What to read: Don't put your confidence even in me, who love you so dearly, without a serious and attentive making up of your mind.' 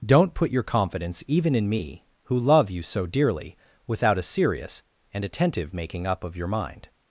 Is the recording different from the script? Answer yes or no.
no